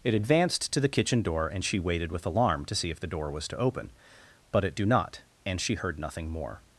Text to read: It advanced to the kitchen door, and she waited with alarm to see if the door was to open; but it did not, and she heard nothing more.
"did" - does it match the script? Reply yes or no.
no